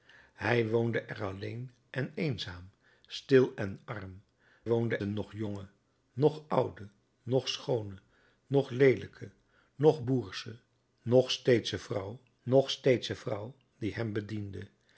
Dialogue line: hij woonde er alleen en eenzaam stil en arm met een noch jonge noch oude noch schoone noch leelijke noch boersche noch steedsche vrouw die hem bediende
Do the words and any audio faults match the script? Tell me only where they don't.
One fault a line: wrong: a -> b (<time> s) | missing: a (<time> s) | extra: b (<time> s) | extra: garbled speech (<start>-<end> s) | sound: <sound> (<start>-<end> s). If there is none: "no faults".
wrong: met -> woonde (4.7 s)
extra: noch steedsche vrouw (12.4 s)